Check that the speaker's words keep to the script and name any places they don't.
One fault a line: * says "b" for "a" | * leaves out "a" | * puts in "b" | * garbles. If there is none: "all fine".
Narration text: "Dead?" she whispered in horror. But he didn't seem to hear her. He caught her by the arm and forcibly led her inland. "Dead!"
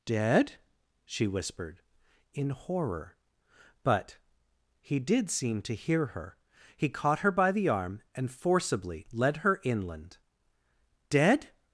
* says "did" for "didn't"